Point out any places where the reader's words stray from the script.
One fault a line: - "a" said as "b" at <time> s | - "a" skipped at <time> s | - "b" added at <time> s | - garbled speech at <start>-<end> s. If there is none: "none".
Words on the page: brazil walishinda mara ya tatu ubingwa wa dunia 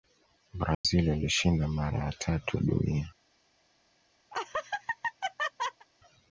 - "ubingwa" skipped at 2.6 s